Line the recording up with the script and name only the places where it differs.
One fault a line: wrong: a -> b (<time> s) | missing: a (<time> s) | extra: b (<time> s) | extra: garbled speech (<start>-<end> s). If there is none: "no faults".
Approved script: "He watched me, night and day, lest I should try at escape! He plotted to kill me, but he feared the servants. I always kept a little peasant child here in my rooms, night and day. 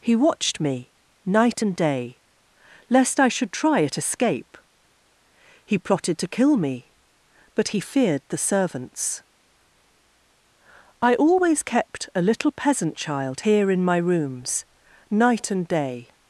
no faults